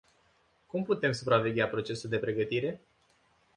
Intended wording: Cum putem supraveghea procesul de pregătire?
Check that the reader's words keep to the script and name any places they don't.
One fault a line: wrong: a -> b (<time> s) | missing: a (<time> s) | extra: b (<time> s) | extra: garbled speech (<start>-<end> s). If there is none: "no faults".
no faults